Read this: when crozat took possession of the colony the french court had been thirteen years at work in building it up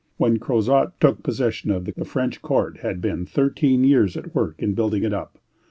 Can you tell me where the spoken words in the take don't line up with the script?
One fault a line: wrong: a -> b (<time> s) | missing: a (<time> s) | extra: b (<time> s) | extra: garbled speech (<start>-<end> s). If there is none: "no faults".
missing: colony (1.9 s)